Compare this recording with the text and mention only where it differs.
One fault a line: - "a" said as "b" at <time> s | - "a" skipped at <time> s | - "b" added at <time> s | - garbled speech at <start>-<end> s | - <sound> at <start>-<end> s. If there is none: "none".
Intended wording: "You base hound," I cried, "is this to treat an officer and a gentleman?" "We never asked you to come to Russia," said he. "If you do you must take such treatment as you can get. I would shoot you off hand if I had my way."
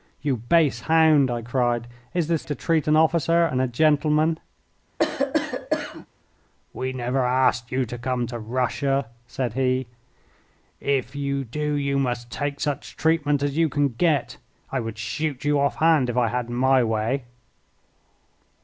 - cough at 5.0-6.1 s